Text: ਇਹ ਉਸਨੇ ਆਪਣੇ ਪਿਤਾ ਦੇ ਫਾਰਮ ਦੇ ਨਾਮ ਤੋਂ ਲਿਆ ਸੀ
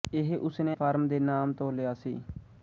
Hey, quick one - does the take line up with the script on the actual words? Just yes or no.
no